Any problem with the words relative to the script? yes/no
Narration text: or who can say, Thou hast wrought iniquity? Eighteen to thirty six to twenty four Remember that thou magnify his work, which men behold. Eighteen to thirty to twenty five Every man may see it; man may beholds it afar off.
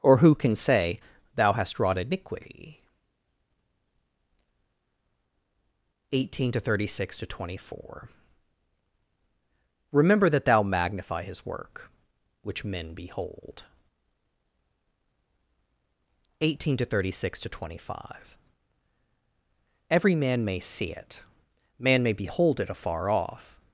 yes